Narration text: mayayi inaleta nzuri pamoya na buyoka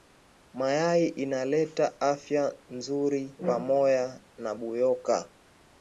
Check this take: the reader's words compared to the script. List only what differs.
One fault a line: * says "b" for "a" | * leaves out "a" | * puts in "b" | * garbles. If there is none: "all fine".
* puts in "afya"